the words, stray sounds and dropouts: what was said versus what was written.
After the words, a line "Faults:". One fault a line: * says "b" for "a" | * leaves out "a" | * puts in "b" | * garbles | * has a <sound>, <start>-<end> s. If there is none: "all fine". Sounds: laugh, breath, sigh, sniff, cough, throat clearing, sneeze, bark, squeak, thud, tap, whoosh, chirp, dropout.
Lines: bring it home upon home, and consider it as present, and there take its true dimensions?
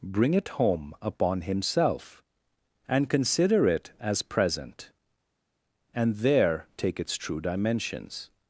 bring it home upon himself, and consider it as present, and there take its true dimensions?
Faults:
* says "himself" for "home"